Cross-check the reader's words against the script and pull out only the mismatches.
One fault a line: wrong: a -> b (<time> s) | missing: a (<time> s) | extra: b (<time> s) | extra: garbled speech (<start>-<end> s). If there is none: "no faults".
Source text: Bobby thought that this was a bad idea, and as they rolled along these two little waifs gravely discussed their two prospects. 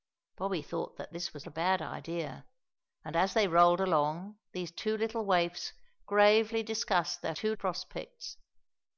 no faults